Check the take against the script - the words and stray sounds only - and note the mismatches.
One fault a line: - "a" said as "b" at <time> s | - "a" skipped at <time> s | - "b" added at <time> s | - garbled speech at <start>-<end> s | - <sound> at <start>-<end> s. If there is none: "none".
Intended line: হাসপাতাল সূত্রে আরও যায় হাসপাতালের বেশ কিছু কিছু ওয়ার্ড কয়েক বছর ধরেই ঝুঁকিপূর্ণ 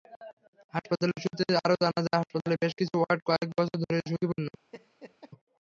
- "জানা" added at 1.8 s
- "কিছু" skipped at 2.9 s
- laugh at 4.7-5.3 s